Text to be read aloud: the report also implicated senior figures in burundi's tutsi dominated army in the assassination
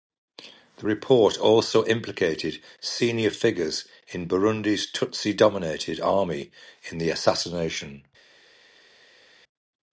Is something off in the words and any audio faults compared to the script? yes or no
no